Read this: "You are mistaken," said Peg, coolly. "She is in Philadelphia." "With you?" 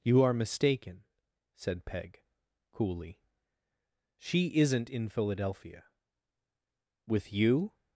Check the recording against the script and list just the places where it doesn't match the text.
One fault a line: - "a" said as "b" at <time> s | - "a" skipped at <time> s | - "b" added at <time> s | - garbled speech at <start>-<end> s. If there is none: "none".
- "is" said as "isn't" at 4.6 s